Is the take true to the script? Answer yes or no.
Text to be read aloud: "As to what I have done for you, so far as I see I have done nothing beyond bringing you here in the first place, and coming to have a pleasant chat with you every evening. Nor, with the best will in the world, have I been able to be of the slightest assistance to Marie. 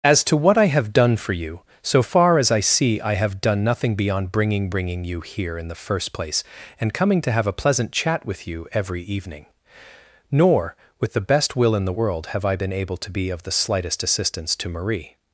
no